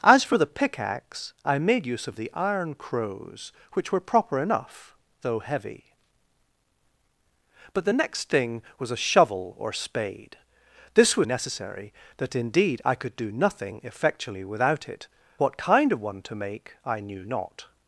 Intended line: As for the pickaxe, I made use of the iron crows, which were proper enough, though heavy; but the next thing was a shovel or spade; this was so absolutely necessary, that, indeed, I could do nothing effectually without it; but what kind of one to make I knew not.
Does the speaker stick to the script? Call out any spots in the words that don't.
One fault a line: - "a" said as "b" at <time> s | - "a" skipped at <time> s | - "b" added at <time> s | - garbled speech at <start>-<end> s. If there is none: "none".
- "so absolutely" skipped at 11.3 s
- "but" skipped at 15.1 s